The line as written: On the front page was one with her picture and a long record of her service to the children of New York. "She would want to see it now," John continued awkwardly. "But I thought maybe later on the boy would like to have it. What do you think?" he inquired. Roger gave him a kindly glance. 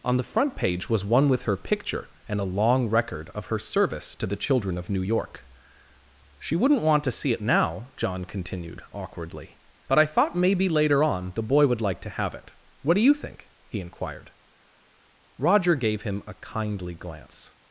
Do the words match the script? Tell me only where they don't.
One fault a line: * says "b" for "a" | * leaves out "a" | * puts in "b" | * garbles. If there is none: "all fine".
* says "wouldn't" for "would"